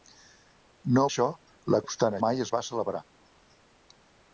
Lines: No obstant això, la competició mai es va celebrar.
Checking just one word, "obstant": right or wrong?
wrong